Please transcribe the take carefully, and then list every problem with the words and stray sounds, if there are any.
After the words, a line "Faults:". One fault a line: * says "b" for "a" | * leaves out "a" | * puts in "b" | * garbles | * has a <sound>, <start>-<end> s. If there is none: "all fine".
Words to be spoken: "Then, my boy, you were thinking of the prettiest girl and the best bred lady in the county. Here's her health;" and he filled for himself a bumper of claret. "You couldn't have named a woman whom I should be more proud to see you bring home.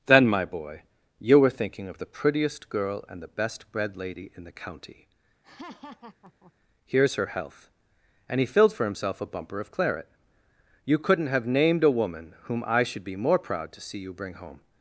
"Then, my boy, you were thinking of the prettiest girl and the best bred lady in the county. Here's her health;" and he filled for himself a bumper of claret. "You couldn't have named a woman whom I should be more proud to see you bring home.
Faults:
* has a laugh, 5.4-6.5 s